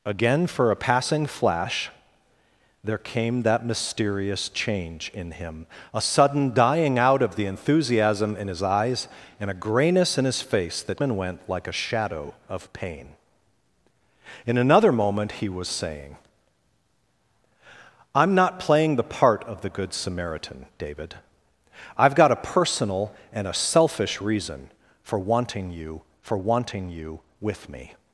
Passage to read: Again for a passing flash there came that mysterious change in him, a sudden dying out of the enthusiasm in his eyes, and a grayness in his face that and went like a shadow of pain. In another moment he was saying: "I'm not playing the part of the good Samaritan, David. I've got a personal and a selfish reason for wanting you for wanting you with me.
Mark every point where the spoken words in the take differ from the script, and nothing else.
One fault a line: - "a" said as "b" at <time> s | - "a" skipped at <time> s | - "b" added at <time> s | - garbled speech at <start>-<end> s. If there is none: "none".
none